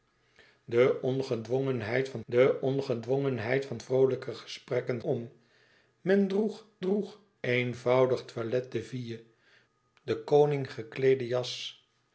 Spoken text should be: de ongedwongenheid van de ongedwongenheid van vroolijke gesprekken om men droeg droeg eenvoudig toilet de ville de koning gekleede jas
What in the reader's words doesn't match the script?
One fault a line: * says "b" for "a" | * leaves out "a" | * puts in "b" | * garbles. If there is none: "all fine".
all fine